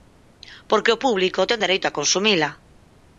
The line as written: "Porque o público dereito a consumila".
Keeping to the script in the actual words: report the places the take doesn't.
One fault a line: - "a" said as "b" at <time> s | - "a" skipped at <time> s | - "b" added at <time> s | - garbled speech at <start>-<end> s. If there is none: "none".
- "ten" added at 1.5 s